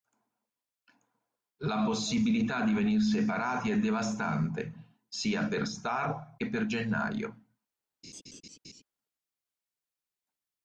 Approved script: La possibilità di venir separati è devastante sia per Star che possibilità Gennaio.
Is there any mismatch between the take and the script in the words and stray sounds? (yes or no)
yes